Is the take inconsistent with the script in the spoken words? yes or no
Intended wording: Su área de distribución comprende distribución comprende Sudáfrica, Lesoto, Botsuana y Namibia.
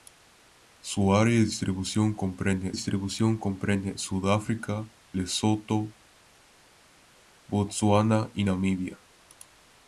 no